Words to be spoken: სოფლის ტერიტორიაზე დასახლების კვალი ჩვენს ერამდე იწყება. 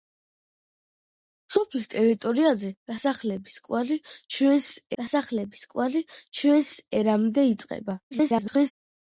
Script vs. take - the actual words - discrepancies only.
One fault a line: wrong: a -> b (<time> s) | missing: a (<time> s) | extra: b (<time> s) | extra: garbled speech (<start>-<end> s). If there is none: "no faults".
extra: დასახლების კვალი ჩვენს (5.0 s)
extra: garbled speech (8.1-8.7 s)